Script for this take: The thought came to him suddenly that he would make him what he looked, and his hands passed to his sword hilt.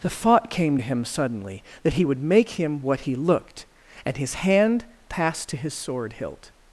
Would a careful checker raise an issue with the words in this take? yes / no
yes